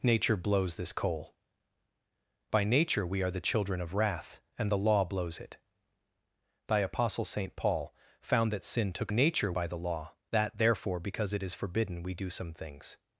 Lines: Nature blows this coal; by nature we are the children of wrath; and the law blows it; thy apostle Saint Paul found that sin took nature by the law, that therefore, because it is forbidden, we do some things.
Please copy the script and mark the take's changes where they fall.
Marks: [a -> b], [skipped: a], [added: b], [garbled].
Nature blows this coal; by nature we are the children of wrath; and the law blows it; thy apostle Saint Paul found that sin took nature by the law, that therefore, because it is forbidden, we do some things.